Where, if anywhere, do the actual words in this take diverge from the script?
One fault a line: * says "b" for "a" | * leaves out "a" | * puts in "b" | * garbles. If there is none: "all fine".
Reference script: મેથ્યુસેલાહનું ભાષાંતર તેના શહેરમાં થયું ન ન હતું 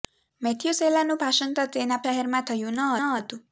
all fine